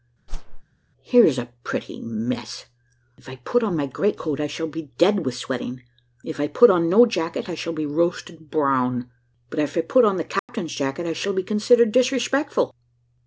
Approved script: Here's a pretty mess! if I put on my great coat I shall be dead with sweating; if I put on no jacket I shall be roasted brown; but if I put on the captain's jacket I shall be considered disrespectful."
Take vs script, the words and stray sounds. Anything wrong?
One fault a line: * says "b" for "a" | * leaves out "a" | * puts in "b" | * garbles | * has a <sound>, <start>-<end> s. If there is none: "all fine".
* has a whoosh, 0.3-0.6 s
* has a dropout, 10.4-10.5 s